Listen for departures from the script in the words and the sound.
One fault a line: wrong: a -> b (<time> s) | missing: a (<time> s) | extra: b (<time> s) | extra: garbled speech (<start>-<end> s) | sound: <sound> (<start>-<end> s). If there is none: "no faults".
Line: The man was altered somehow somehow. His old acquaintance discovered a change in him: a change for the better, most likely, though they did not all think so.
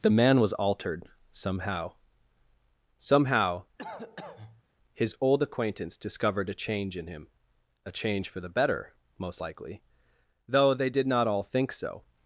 sound: cough (3.8-4.6 s)